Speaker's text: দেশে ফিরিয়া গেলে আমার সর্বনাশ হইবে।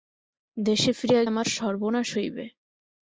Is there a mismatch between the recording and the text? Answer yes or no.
yes